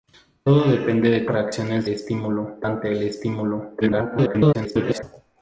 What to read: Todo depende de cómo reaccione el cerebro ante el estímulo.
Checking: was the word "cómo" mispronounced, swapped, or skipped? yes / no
yes